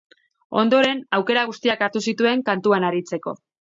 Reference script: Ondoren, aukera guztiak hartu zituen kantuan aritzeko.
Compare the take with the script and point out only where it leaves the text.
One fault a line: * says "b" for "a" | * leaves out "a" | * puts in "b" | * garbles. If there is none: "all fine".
all fine